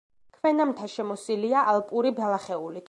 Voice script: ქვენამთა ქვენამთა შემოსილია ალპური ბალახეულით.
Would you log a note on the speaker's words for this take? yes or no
yes